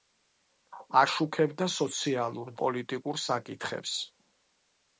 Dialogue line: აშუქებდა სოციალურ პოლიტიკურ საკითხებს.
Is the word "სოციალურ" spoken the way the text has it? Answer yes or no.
yes